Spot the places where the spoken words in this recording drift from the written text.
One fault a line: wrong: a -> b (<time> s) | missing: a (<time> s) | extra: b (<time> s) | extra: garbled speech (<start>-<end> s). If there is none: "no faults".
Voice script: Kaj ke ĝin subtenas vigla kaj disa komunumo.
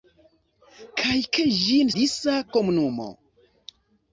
missing: subtenas vigla kaj (1.9 s)